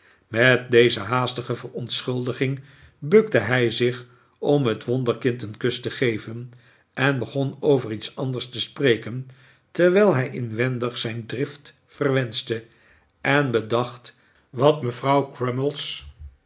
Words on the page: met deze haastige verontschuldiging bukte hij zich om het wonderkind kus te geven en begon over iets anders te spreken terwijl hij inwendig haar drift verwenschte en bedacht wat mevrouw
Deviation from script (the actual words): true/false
true